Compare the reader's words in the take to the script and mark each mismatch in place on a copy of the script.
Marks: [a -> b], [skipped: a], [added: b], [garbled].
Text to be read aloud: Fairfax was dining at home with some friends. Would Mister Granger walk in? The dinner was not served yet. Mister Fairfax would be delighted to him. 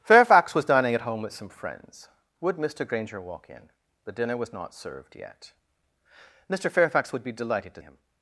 Fairfax was dining at home with some friends. Would Mister Granger walk in? The dinner was not served yet. Mister Fairfax would be delighted to him.